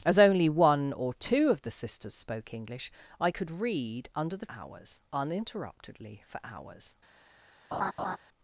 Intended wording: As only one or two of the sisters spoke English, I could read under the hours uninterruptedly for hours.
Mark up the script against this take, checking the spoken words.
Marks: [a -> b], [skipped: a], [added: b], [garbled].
As only one or two of the sisters spoke English, I could read under the hours uninterruptedly for hours.